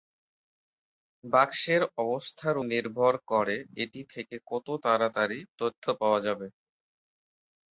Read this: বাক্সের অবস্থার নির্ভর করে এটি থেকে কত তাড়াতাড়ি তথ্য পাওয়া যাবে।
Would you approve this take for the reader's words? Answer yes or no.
yes